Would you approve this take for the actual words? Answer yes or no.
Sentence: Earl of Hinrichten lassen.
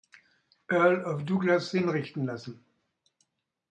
no